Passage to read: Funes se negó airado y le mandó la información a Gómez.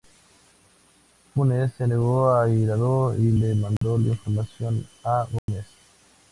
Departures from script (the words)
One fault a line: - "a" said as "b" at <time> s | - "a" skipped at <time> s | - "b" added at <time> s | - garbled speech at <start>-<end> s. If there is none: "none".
none